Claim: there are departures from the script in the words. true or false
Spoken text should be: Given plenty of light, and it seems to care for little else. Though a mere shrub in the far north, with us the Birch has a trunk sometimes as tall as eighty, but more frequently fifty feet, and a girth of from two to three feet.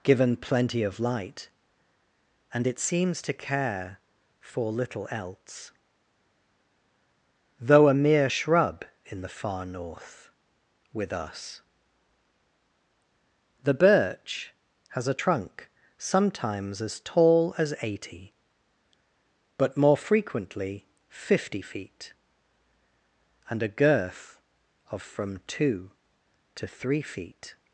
false